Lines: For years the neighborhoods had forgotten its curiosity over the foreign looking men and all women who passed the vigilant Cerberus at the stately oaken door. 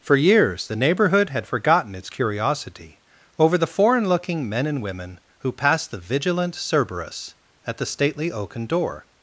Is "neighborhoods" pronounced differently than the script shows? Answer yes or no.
yes